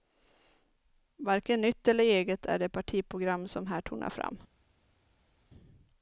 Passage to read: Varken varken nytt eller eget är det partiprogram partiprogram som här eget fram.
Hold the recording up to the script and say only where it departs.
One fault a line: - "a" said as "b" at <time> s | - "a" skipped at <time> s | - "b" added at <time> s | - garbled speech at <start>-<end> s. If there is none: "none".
- "varken" skipped at 1.6 s
- "partiprogram" skipped at 3.5 s
- "eget" said as "tonar" at 3.8 s